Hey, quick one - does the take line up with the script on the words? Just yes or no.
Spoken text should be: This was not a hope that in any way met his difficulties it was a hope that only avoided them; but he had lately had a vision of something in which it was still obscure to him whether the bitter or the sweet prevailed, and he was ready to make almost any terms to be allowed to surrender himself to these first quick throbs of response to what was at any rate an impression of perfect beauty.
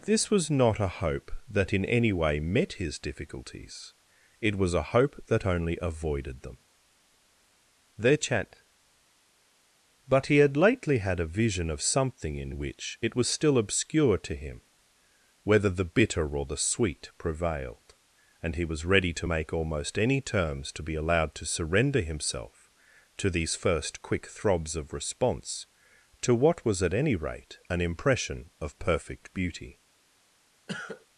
no